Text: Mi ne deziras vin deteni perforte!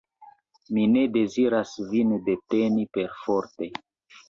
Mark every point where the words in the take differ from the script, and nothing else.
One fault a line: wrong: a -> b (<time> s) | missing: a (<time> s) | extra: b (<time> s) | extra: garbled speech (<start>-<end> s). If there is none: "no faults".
no faults